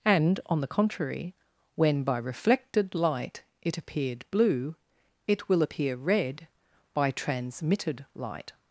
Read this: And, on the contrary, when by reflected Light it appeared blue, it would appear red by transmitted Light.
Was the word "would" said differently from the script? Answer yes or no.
yes